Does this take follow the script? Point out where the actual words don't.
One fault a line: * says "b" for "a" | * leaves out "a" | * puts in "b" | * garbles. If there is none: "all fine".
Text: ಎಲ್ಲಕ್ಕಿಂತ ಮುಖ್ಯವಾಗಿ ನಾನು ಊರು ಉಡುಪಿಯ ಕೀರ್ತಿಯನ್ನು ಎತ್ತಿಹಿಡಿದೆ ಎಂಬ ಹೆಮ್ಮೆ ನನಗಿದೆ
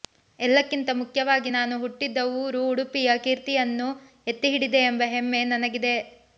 * puts in "ಹುಟ್ಟಿದ"